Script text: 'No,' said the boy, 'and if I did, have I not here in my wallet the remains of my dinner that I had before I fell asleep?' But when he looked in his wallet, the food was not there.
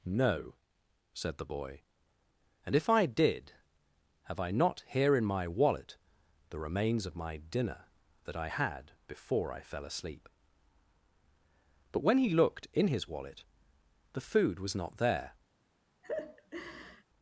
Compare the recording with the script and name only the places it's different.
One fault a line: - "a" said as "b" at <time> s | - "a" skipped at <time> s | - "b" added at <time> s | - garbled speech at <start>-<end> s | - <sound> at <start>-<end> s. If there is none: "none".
- laugh at 16.0-17.0 s